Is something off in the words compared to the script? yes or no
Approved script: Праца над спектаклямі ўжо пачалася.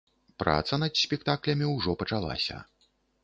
no